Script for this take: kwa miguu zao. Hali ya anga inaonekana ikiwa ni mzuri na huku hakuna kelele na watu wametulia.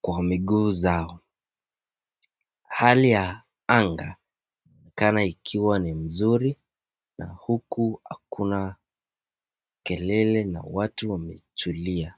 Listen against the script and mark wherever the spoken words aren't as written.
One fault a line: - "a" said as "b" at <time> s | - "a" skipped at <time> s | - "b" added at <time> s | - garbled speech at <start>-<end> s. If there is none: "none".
none